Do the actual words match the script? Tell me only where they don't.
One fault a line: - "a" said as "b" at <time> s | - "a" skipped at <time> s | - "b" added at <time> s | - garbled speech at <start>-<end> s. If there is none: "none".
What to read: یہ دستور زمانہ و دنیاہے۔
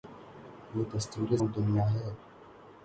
- "زمانہ" skipped at 1.3 s